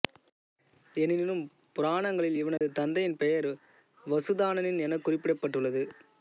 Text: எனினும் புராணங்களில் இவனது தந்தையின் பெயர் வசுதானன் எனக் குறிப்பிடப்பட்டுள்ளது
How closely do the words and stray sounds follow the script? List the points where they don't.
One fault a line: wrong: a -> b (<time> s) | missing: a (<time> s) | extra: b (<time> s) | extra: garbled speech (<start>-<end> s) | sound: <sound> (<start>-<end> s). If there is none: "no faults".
sound: dropout (2.6-2.6 s)